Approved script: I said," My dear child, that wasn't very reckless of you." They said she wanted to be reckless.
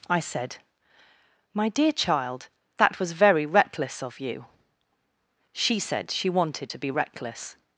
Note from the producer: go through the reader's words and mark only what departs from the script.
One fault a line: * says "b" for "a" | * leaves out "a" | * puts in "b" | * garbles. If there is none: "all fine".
* says "was" for "wasn't"
* says "She" for "They"